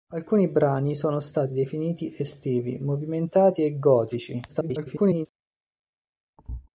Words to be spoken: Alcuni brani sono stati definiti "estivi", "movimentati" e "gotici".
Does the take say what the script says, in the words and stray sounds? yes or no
no